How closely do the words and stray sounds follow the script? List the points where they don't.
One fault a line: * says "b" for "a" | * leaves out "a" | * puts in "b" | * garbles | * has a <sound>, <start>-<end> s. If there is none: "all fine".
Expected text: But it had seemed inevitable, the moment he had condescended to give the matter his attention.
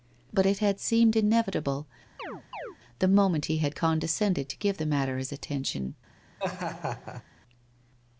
* has a chirp, 2.2-2.8 s
* has a laugh, 6.4-7.2 s